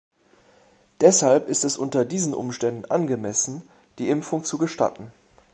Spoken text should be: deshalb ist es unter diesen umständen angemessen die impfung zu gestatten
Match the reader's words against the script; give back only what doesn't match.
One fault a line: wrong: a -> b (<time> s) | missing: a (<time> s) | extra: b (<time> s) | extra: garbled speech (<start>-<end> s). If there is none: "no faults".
no faults